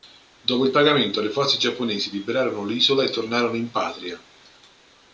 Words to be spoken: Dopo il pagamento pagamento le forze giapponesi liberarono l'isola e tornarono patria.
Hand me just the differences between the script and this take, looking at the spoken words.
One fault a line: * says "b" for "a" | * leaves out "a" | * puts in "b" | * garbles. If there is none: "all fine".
* leaves out "pagamento"
* puts in "in"